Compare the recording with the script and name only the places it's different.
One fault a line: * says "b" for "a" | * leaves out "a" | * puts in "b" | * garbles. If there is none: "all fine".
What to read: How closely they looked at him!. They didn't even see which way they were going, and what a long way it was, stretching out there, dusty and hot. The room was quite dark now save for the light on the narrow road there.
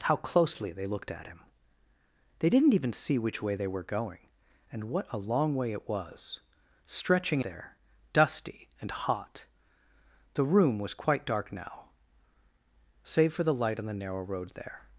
* leaves out "out"